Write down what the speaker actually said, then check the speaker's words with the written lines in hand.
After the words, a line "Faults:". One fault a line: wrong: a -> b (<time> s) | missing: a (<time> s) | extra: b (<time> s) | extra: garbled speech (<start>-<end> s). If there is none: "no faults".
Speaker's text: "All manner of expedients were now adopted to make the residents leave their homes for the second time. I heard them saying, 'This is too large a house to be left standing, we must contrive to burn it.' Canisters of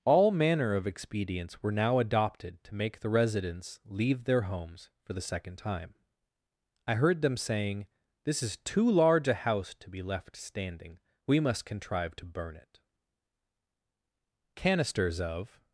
"All manner of expedients were now adopted to make the residents leave their homes for the second time. I heard them saying, 'This is too large a house to be left standing, we must contrive to burn it.' Canisters of
Faults:
no faults